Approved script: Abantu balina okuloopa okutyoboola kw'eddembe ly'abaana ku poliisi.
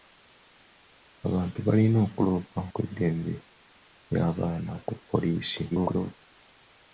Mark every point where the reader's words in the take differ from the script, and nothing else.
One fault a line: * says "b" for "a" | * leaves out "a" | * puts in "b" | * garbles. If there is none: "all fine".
* leaves out "okutyoboola"
* garbles